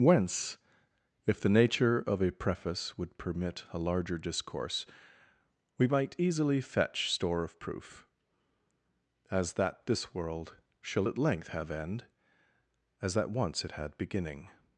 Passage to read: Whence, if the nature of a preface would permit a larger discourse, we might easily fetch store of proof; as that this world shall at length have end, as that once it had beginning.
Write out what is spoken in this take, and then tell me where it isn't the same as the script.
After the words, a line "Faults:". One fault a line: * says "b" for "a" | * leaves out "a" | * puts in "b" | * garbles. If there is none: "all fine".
Whence, if the nature of a preface would permit a larger discourse, we might easily fetch store of proof; as that this world shall at length have end, as that once it had beginning.
Faults:
all fine